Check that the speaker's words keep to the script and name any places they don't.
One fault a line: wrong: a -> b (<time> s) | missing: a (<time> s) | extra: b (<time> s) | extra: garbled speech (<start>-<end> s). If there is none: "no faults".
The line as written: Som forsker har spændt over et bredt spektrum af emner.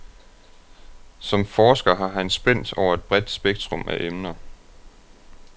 extra: han (2.1 s)